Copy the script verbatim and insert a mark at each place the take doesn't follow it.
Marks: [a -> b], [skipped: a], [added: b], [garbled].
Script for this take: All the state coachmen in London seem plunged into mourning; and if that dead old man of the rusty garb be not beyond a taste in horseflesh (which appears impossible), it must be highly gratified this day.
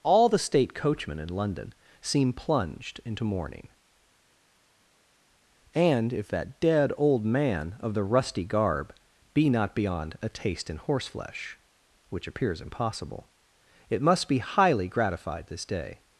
All the state coachmen in London seem plunged into mourning; and if that dead old man of the rusty garb be not beyond a taste in horseflesh (which appears impossible), it must be highly gratified this day.